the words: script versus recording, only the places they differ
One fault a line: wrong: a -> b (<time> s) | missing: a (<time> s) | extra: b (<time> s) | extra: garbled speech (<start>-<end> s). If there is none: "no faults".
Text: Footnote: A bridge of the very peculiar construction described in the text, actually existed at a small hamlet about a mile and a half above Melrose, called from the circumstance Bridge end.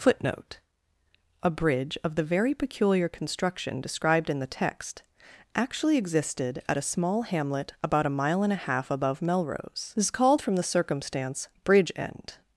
extra: this is (10.0 s)